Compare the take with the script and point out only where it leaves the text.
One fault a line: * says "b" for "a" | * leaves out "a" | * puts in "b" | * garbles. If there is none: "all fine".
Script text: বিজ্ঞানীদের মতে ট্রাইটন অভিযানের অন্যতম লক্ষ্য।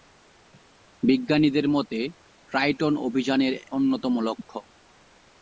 all fine